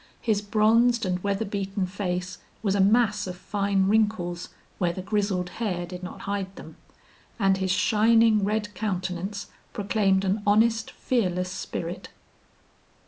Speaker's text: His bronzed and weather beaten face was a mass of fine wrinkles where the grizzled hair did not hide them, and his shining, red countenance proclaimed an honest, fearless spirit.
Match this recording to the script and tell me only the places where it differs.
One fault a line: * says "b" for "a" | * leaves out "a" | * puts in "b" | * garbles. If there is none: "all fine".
all fine